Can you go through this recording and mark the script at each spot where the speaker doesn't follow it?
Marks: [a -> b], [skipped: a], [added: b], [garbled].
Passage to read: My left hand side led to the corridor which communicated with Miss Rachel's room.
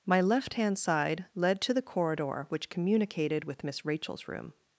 My left hand side led to the corridor which communicated with Miss Rachel's room.